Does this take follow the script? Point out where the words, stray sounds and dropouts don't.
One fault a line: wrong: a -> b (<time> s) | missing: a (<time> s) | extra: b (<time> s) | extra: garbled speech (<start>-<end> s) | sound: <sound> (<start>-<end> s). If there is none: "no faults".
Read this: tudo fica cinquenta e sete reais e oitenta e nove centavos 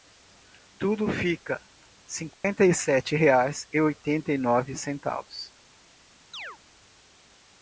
sound: dropout (2.3-2.4 s)
sound: chirp (6.3-6.6 s)